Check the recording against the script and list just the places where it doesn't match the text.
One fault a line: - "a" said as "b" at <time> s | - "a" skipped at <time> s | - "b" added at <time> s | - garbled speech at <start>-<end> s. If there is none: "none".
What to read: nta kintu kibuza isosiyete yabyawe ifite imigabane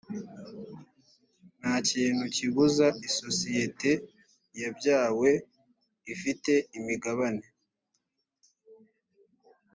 none